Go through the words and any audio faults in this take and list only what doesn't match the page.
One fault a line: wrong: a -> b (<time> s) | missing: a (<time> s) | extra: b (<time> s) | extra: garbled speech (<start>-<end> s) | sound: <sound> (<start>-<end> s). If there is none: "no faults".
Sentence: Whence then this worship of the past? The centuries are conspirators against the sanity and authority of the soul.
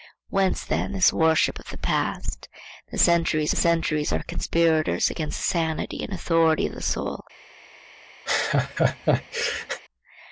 extra: centuries (3.5 s)
sound: laugh (8.3-9.8 s)